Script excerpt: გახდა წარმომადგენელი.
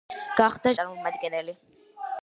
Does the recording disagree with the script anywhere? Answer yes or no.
no